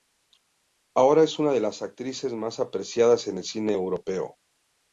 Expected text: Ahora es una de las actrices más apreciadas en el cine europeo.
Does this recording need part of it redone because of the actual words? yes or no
no